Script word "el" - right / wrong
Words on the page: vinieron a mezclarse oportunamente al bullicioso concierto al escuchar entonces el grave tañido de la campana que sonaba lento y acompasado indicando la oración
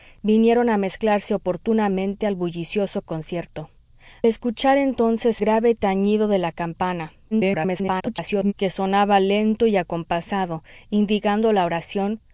wrong